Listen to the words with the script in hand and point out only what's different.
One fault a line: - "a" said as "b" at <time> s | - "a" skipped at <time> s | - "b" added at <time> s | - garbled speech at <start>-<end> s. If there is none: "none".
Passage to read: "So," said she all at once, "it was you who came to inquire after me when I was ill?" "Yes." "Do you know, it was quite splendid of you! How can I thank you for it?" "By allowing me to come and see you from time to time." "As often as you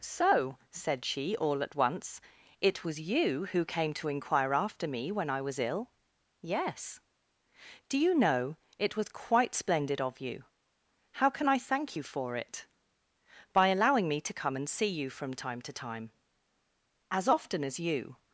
none